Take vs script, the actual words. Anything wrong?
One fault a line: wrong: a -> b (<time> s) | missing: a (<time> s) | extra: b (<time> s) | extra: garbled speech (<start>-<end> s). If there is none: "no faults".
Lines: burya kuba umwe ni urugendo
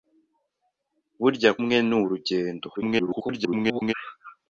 missing: kuba (1.5 s)
extra: garbled speech (2.8-3.9 s)